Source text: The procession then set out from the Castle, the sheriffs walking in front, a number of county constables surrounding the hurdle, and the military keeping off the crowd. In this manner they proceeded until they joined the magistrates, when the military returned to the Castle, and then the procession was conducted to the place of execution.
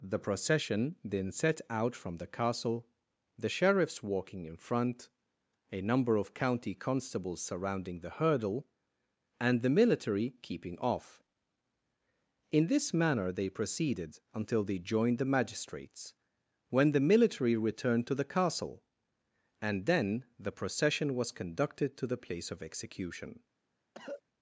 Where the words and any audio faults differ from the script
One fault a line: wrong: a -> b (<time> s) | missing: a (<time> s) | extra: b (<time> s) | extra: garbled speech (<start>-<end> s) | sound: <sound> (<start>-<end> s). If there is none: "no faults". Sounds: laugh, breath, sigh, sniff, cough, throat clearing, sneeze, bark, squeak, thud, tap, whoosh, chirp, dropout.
missing: the crowd (11.2 s)
sound: cough (23.9-24.2 s)